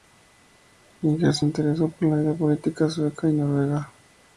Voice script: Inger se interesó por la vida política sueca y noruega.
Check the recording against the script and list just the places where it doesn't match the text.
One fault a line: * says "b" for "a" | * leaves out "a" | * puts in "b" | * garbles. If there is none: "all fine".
all fine